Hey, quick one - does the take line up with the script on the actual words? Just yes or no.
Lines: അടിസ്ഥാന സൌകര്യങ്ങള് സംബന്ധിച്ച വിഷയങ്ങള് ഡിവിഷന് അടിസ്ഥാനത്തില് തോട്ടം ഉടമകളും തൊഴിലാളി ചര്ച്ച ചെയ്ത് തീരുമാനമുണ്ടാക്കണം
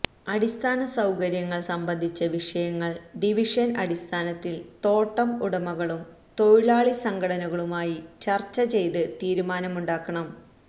no